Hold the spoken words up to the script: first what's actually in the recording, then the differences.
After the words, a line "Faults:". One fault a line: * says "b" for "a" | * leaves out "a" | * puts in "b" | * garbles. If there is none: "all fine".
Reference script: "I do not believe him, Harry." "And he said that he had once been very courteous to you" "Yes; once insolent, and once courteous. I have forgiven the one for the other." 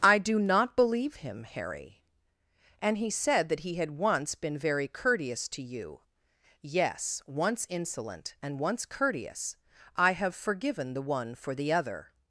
"I do not believe him, Harry." "And he said that he had once been very courteous to you" "Yes; once insolent, and once courteous. I have forgiven the one for the other."
Faults:
all fine